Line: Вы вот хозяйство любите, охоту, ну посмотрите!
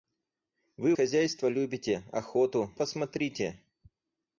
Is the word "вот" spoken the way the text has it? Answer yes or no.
no